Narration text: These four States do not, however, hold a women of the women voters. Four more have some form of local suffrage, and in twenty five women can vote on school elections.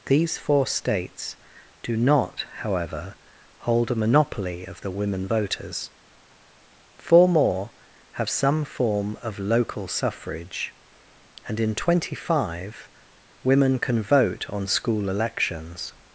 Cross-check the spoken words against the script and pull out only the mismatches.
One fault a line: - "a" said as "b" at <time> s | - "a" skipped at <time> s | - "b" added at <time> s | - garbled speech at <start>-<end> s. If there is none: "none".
- "women" said as "monopoly" at 4.0 s